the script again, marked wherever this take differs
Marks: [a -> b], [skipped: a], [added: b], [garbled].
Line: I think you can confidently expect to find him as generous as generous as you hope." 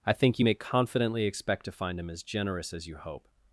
I think you [can -> may] confidently expect to find him as generous as [skipped: generous as] you hope."